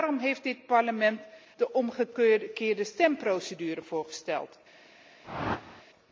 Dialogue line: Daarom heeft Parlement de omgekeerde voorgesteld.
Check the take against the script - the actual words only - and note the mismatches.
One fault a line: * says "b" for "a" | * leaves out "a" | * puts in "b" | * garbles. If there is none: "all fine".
* puts in "dit"
* puts in "stemprocedure"